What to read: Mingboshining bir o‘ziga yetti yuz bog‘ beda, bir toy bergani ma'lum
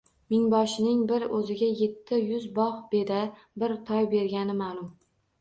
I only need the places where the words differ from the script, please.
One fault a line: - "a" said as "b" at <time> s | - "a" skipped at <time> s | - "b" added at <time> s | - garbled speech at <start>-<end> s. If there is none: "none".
none